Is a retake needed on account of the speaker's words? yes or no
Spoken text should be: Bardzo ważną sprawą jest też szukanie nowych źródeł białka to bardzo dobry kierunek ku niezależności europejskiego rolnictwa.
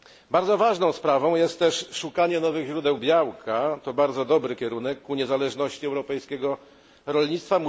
no